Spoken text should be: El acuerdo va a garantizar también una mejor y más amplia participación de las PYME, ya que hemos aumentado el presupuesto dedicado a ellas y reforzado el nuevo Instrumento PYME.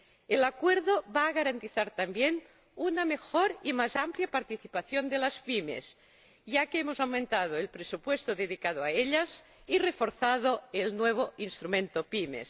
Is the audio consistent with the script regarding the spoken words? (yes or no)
yes